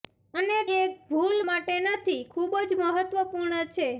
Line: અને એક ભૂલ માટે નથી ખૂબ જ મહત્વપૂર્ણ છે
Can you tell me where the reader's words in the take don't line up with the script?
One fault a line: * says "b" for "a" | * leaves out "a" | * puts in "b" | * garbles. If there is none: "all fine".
all fine